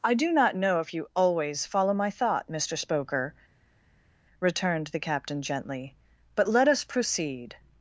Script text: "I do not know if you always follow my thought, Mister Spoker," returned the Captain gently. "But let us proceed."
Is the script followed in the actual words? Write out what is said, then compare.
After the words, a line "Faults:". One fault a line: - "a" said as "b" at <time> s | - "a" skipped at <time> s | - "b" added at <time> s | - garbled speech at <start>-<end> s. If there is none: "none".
"I do not know if you always follow my thought, Mister Spoker," returned the Captain gently. "But let us proceed."
Faults:
none